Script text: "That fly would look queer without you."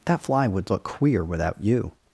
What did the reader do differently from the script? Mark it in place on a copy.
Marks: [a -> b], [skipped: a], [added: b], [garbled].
"That fly would look queer without you."